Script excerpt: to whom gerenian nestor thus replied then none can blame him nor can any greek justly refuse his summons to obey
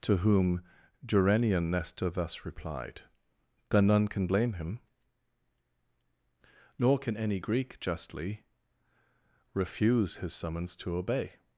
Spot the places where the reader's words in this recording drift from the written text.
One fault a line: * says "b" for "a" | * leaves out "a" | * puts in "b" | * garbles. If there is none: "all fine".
all fine